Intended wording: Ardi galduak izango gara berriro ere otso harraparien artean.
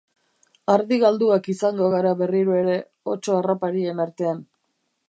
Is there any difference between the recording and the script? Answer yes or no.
no